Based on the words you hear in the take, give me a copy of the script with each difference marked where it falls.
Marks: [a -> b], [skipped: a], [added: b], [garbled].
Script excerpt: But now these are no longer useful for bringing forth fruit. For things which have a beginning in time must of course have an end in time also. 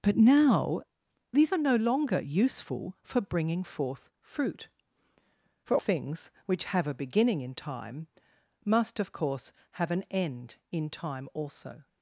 But now these are no longer useful for bringing forth fruit. For things which have a beginning in time must of course have an end in time also.